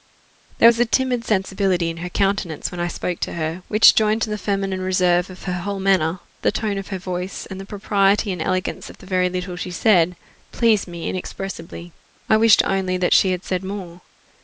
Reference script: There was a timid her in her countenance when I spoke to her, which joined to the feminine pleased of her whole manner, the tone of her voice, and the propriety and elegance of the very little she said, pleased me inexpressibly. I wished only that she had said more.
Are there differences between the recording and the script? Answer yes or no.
yes